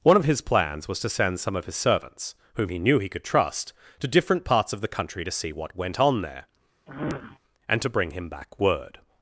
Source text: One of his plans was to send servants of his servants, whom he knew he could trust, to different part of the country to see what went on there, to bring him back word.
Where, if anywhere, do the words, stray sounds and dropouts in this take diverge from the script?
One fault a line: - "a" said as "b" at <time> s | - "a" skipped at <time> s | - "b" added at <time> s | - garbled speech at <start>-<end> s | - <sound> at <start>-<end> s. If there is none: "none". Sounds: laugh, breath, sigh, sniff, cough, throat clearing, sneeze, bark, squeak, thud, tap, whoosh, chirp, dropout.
- "servants" said as "some" at 1.4 s
- "part" said as "parts" at 4.5 s
- sniff at 6.9-7.4 s
- "and" added at 7.7 s